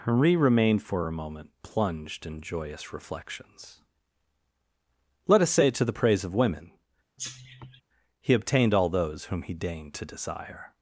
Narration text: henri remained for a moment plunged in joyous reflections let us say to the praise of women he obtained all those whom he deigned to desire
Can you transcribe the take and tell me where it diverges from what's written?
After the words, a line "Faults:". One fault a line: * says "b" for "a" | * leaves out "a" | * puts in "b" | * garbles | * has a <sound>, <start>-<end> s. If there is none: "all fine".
henri remained for a moment plunged in joyous reflections let us say to the praise of women he obtained all those whom he deigned to desire
Faults:
* has a cough, 7.2-7.8 s